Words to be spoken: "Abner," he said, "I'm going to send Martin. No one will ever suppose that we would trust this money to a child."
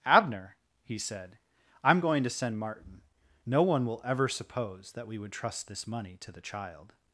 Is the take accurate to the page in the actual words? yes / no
no